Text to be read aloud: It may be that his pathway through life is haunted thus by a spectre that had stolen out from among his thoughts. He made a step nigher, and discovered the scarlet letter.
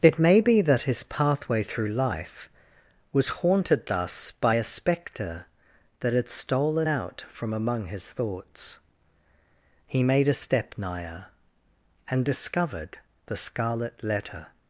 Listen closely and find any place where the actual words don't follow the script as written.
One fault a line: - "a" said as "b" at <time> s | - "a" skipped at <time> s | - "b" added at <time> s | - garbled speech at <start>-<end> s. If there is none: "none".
- "is" said as "was" at 3.1 s